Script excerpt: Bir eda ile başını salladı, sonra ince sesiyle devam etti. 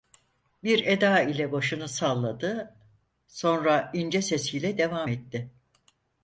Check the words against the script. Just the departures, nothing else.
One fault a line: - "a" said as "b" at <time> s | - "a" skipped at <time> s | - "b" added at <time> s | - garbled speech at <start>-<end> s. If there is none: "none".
none